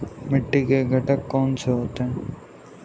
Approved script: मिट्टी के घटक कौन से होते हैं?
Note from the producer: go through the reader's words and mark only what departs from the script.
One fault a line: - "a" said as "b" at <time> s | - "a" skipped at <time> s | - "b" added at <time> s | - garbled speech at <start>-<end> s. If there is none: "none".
none